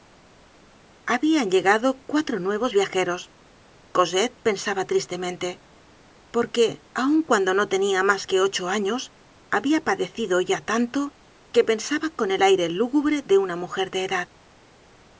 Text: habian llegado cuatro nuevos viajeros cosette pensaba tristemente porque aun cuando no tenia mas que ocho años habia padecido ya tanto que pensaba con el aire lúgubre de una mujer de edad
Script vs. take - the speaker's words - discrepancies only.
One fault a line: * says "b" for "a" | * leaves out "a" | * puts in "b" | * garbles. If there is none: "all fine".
all fine